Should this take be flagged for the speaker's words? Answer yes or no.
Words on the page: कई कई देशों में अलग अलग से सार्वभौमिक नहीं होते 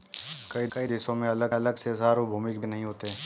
no